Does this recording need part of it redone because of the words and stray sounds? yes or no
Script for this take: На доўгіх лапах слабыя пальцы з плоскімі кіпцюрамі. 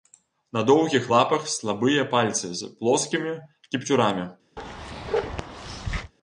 yes